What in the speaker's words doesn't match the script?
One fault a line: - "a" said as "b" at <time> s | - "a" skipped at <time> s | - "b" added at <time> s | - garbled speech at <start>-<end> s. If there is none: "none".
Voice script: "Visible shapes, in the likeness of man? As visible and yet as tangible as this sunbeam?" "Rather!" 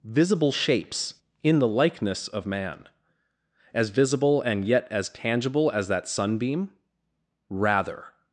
- "this" said as "that" at 5.9 s